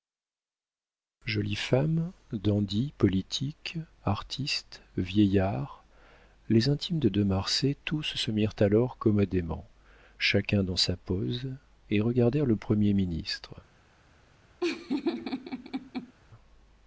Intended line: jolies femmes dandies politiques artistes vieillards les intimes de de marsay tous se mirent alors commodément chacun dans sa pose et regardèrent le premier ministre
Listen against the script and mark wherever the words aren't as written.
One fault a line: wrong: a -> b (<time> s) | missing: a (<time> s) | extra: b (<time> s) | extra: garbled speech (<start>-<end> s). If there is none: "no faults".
no faults